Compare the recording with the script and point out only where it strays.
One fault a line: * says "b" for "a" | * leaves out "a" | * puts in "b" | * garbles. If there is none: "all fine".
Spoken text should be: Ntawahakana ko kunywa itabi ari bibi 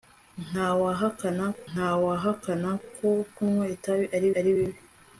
* puts in "ntawahakana"
* puts in "ari"